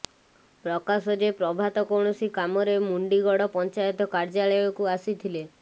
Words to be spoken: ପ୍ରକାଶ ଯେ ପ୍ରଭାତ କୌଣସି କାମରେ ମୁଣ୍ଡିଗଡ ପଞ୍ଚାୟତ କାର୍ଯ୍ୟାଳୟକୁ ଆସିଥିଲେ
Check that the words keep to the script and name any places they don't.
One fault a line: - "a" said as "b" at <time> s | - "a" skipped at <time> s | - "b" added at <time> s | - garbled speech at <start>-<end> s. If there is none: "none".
none